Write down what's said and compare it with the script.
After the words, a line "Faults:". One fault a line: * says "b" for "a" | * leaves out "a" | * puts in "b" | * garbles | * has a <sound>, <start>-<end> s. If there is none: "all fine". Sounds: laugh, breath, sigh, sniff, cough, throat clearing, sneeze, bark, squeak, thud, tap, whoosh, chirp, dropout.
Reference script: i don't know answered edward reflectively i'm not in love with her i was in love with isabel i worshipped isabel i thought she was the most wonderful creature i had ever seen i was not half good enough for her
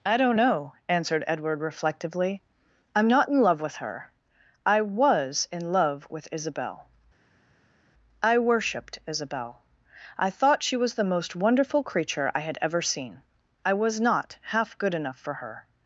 i don't know answered edward reflectively i'm not in love with her i was in love with isabel i worshipped isabel i thought she was the most wonderful creature i had ever seen i was not half good enough for her
Faults:
all fine